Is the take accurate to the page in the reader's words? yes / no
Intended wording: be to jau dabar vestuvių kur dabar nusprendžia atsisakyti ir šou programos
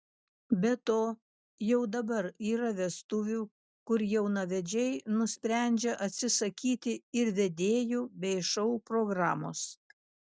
no